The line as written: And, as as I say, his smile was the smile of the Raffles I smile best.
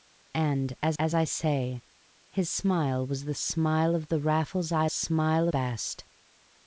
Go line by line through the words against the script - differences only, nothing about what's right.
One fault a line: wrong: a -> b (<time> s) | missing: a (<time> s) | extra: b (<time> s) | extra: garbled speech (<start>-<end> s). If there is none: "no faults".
no faults